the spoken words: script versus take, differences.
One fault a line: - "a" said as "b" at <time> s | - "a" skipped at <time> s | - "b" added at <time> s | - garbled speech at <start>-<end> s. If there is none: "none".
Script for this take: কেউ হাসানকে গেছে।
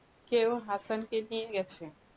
- "নিয়ে" added at 1.3 s